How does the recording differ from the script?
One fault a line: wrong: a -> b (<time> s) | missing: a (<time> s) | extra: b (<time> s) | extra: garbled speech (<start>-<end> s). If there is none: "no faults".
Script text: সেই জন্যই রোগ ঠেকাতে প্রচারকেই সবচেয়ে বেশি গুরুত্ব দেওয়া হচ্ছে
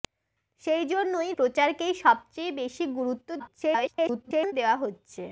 missing: রোগ ঠেকাতে (1.3 s)
extra: garbled speech (3.4-4.5 s)